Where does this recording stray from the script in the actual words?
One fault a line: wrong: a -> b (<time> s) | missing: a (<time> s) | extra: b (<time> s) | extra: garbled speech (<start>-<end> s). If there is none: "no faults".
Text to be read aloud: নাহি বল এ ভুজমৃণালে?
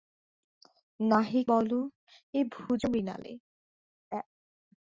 no faults